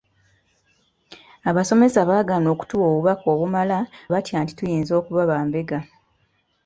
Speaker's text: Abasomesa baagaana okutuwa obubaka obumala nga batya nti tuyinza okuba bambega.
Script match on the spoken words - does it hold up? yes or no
no